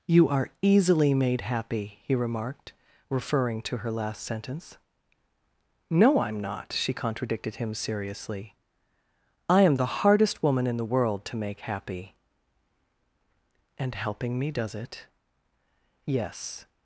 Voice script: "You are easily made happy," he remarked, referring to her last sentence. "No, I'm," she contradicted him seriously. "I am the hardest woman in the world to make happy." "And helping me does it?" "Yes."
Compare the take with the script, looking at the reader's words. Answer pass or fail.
fail